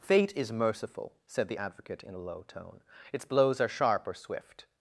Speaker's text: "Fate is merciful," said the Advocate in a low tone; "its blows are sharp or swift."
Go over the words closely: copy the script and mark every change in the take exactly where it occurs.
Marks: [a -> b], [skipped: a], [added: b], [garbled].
"Fate is merciful," said the Advocate in a low tone; "its blows are sharp or swift."